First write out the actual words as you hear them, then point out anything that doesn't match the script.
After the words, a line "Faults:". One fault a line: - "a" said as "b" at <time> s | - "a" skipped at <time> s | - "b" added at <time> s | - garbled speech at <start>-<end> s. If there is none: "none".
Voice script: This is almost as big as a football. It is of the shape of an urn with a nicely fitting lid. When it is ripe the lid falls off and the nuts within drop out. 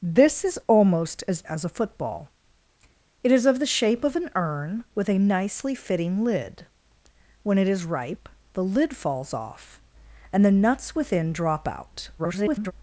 This is almost as as a football. It is of the shape of an urn with a nicely fitting lid. When it is ripe the lid falls off and the nuts within drop out. [garbled]
Faults:
- "big" skipped at 1.4 s
- garbled speech at 12.2-12.7 s